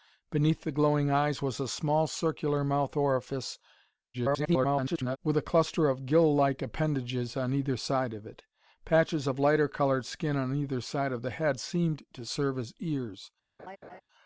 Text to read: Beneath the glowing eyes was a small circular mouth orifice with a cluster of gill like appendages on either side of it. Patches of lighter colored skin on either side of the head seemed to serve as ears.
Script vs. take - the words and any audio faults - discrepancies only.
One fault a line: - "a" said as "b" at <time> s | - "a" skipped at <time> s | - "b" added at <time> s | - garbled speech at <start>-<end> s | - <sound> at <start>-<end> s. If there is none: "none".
- garbled speech at 4.1-5.2 s
- laugh at 13.6-14.0 s